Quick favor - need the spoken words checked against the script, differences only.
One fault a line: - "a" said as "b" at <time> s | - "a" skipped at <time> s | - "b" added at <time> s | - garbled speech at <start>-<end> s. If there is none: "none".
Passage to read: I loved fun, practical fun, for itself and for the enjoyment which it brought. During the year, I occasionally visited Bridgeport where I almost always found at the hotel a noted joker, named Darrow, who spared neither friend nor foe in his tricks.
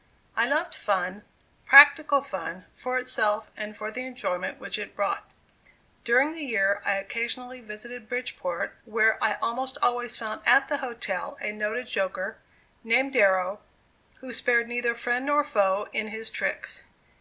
none